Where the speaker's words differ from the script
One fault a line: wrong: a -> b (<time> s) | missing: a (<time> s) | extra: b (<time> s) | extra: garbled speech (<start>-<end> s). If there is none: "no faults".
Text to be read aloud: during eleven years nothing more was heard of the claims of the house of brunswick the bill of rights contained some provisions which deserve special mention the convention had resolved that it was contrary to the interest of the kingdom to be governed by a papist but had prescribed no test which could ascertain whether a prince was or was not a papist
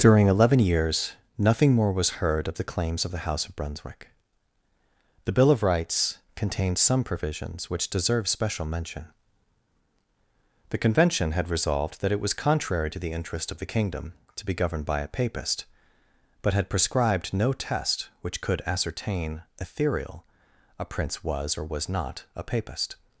wrong: whether -> ethereal (19.6 s)